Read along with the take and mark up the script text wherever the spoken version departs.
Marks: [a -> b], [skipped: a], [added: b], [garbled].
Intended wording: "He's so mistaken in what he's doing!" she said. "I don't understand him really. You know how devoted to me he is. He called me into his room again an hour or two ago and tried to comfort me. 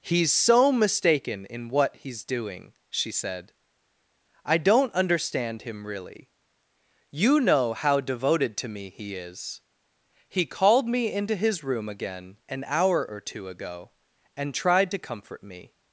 "He's so mistaken in what he's doing!" she said. "I don't understand him really. You know how devoted to me he is. He called me into his room again an hour or two ago and tried to comfort me.